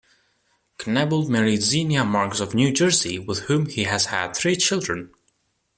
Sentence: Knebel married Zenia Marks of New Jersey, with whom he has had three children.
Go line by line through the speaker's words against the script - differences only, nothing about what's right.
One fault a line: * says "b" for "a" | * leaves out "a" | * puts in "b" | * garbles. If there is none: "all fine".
all fine